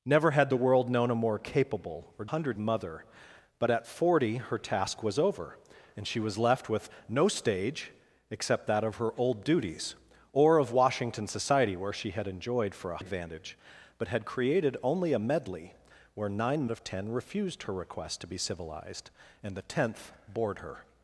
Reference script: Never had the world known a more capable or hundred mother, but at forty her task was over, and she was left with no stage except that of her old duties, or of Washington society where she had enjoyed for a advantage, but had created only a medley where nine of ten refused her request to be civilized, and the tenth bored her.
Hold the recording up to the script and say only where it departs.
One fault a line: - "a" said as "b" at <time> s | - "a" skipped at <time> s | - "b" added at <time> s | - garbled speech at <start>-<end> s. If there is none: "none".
none